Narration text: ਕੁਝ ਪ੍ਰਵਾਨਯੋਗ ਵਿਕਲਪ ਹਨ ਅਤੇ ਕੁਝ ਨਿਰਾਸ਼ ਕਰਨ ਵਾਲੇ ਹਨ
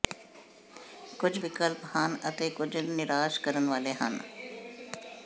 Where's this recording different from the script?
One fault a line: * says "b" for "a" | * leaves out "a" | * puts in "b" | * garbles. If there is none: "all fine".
* leaves out "ਪ੍ਰਵਾਨਯੋਗ"